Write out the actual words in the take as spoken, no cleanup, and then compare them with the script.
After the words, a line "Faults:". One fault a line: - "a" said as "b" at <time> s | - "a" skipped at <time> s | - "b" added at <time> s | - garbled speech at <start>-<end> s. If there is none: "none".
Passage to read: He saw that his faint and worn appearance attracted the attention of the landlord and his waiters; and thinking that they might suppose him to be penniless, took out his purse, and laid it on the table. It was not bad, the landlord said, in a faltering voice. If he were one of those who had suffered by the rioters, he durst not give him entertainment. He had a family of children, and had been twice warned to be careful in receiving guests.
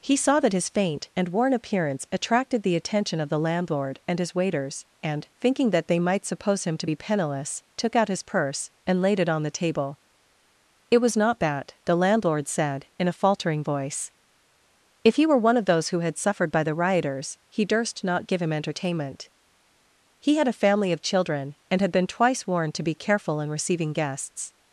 He saw that his faint and worn appearance attracted the attention of the landlord and his waiters; and thinking that they might suppose him to be penniless, took out his purse, and laid it on the table. It was not bad, the landlord said, in a faltering voice. If he were one of those who had suffered by the rioters, he durst not give him entertainment. He had a family of children, and had been twice warned to be careful in receiving guests.
Faults:
none